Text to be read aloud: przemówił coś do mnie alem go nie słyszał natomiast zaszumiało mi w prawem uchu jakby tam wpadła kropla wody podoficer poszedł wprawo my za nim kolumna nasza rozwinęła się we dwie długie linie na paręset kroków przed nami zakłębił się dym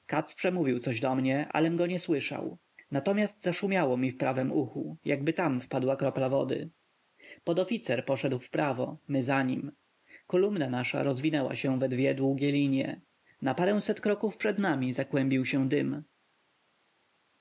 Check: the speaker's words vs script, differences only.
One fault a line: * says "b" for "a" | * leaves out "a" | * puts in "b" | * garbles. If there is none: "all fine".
all fine